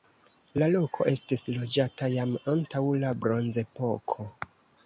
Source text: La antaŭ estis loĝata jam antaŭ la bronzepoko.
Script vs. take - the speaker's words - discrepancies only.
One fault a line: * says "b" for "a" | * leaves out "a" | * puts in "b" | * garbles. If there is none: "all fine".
* says "loko" for "antaŭ"